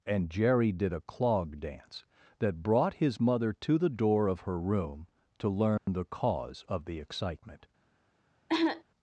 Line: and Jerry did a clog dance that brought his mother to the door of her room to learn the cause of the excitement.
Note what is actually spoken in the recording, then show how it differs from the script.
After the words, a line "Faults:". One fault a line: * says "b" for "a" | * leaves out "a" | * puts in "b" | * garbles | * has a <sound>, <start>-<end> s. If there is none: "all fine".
and Jerry did a clog dance that brought his mother to the door of her room to learn the cause of the excitement.
Faults:
* has a dropout, 5.8-5.9 s
* has a cough, 8.5-8.8 s